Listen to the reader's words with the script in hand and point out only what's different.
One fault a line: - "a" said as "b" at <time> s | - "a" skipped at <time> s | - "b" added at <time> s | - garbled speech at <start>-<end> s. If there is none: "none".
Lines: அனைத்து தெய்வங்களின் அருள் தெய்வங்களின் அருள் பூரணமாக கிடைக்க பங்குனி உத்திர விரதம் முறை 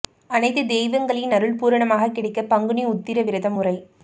- "தெய்வங்களின் அருள்" skipped at 1.6 s